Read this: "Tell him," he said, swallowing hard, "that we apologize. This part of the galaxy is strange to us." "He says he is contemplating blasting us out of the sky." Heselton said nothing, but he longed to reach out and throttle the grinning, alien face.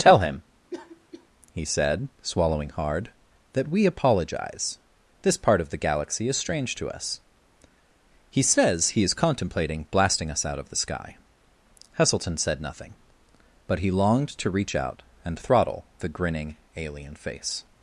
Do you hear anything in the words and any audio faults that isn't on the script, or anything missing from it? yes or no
yes